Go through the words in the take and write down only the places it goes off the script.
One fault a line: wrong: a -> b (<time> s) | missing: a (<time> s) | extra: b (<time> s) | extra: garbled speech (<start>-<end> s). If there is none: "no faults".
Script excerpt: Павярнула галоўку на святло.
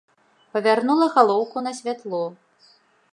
no faults